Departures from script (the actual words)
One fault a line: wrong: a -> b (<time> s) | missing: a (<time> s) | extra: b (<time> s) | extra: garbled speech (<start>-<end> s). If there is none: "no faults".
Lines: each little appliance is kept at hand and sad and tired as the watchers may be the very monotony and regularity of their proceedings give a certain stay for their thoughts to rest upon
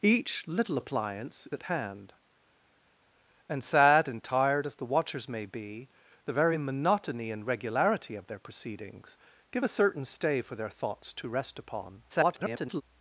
missing: is kept (1.5 s)
extra: garbled speech (12.1-12.8 s)